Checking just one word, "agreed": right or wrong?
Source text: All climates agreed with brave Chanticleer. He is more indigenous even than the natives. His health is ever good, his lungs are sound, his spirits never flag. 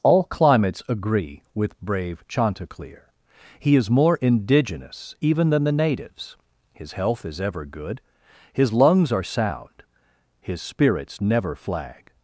wrong